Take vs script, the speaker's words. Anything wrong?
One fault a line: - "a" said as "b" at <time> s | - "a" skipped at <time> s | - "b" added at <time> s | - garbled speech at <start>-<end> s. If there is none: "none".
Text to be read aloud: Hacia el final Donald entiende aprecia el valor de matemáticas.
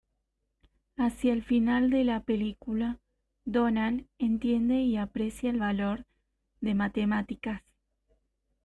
- "de la película" added at 1.9 s
- "y" added at 4.8 s